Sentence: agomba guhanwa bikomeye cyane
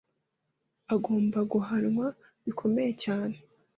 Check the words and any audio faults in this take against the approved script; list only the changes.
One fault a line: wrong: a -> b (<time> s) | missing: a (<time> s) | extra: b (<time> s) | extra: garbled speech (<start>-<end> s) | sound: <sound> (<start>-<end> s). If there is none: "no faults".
no faults